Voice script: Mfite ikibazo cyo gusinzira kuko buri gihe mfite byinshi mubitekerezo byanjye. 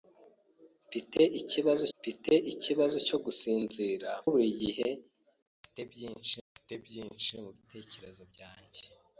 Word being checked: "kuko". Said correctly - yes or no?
no